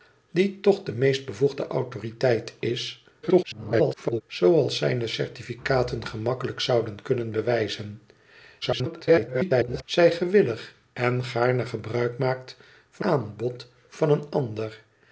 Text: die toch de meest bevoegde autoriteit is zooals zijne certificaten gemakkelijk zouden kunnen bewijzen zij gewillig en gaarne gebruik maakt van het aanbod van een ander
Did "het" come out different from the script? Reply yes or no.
yes